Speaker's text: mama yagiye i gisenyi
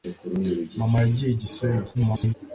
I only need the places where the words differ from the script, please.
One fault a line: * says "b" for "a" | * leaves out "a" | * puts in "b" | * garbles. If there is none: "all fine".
* garbles